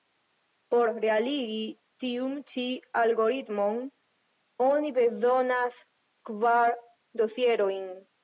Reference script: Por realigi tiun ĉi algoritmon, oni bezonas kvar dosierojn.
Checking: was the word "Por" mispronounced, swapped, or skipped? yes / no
no